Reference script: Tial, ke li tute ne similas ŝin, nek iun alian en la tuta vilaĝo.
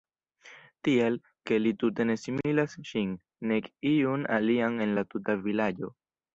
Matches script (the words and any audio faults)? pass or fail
pass